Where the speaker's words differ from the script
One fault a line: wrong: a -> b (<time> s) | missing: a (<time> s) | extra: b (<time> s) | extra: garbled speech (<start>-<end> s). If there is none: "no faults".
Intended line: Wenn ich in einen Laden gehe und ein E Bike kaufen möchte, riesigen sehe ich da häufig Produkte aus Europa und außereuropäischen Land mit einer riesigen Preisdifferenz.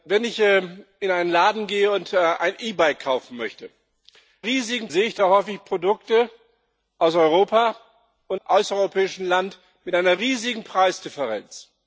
no faults